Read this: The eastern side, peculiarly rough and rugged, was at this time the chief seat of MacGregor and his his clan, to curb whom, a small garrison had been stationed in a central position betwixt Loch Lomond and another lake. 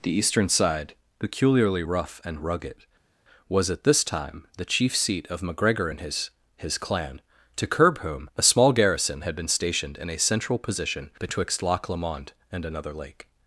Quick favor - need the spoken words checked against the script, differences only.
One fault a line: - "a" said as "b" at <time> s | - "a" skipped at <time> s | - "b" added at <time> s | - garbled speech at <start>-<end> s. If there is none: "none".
none